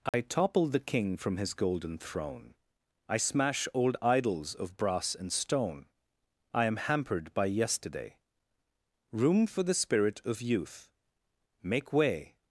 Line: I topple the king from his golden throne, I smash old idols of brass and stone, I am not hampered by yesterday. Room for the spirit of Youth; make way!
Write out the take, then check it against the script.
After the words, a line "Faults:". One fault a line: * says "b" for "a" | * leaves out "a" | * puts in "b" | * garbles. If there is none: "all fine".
I topple the king from his golden throne, I smash old idols of brass and stone, I am hampered by yesterday. Room for the spirit of Youth; make way!
Faults:
* leaves out "not"